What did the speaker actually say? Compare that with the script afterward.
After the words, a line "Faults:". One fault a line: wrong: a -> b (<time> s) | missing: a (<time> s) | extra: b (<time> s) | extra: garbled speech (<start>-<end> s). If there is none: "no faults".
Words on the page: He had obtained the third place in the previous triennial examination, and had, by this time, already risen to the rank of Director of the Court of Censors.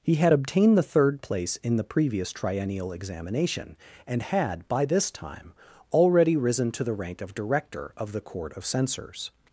He had obtained the third place in the previous triennial examination, and had, by this time, already risen to the rank of Director of the Court of Censors.
Faults:
no faults